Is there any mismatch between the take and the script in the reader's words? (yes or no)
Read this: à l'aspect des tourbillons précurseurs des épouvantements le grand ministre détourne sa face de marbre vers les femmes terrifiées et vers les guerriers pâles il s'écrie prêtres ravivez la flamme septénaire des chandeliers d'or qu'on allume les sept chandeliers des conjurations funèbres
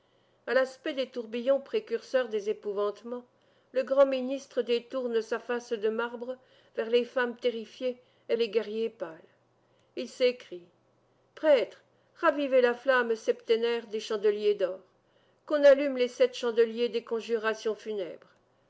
yes